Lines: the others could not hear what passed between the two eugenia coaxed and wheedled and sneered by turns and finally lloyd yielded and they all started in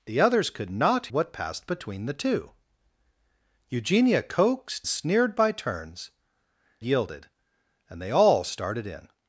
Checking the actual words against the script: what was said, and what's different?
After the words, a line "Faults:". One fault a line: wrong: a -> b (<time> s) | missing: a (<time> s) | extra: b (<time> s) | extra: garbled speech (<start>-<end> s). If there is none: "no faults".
the others could not what passed between the two eugenia coaxed sneered by turns yielded and they all started in
Faults:
missing: hear (1.1 s)
missing: and wheedled and (4.9 s)
missing: and finally lloyd (6.1 s)